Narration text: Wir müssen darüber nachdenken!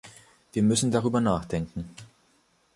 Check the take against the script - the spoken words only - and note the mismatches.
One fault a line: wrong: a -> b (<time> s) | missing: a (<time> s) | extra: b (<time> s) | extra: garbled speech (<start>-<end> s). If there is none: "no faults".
no faults